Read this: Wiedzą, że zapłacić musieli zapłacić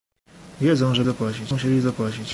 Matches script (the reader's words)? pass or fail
pass